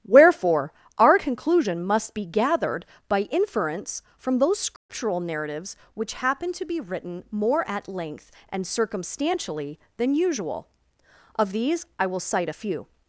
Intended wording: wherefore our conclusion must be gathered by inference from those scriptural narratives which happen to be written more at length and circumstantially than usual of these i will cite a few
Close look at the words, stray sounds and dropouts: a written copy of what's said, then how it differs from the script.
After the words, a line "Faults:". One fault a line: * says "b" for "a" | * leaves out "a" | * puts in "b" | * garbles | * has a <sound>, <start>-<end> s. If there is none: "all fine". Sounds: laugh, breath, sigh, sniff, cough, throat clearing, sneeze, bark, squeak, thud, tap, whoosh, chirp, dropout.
wherefore our conclusion must be gathered by inference from those scriptural narratives which happen to be written more at length and circumstantially than usual of these i will cite a few
Faults:
* has a dropout, 4.8-4.9 s